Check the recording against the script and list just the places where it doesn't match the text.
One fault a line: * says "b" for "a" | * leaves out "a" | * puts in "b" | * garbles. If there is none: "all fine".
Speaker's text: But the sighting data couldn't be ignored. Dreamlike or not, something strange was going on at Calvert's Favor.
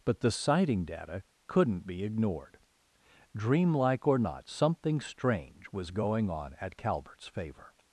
all fine